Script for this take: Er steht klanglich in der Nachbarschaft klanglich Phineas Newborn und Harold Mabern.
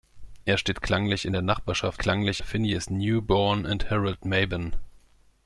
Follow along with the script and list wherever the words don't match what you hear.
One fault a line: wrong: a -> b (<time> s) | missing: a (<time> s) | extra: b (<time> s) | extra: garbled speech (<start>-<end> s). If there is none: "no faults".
no faults